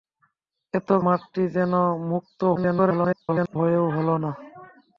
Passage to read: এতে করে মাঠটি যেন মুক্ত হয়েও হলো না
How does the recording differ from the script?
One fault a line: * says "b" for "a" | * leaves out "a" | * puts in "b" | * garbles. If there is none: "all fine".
* leaves out "করে"
* garbles